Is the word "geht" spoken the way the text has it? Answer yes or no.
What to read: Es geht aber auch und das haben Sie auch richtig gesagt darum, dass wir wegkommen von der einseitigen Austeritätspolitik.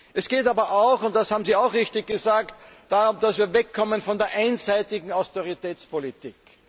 yes